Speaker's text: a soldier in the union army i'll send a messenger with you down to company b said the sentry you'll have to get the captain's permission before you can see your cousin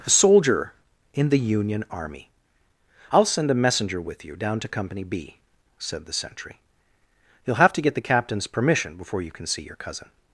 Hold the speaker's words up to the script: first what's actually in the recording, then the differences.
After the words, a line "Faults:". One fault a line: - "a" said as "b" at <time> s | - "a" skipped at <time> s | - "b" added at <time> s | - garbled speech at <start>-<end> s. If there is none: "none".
a soldier in the union army i'll send a messenger with you down to company b said the sentry you'll have to get the captain's permission before you can see your cousin
Faults:
none